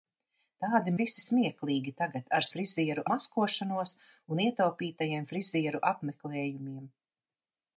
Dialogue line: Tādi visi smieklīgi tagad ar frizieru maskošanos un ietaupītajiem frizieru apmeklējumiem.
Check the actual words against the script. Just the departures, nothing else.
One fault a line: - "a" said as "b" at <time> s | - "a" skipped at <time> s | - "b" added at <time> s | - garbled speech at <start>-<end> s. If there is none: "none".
none